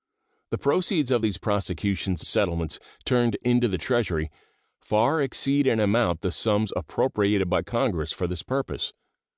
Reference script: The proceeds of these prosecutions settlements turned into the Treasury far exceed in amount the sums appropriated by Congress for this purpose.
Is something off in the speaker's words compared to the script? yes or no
no